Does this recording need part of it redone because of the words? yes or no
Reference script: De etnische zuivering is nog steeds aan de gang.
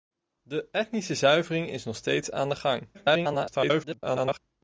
yes